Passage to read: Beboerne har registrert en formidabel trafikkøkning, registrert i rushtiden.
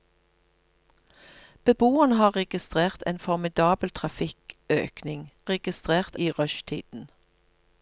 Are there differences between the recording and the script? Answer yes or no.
no